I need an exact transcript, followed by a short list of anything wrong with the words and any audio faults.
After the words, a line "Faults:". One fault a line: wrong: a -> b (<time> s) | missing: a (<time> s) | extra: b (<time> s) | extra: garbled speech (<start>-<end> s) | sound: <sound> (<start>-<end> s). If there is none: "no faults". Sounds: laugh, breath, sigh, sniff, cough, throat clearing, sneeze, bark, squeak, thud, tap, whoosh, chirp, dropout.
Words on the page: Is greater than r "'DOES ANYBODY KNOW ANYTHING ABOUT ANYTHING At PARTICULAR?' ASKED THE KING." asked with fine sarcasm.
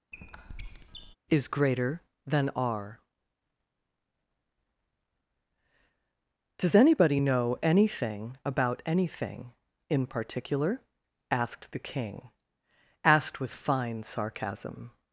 Is greater than r "'DOES ANYBODY KNOW ANYTHING ABOUT ANYTHING IN PARTICULAR?' ASKED THE KING." asked with fine sarcasm.
Faults:
sound: squeak (0.1-1.2 s)
wrong: At -> IN (9.9 s)